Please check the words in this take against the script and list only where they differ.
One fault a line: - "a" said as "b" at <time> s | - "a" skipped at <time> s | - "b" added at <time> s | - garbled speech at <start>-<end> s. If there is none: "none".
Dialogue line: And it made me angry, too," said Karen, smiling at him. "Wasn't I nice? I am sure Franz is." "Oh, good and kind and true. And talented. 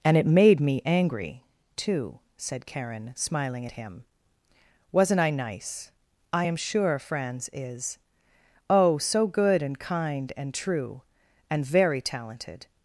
- "so" added at 9.0 s
- "very" added at 11.6 s